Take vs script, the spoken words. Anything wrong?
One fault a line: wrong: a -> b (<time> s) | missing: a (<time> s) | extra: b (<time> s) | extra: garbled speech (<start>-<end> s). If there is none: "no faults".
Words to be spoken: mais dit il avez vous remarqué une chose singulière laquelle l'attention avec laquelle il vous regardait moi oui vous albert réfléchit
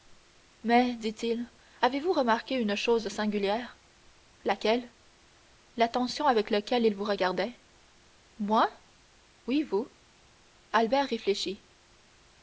no faults